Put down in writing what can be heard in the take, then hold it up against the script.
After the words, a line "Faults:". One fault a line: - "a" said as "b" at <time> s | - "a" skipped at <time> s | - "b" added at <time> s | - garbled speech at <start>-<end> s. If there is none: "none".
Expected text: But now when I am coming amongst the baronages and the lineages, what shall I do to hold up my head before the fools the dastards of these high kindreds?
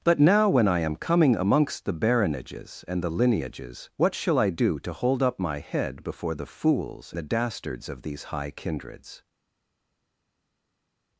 But now when I am coming amongst the baronages and the lineages, what shall I do to hold up my head before the fools the dastards of these high kindreds?
Faults:
none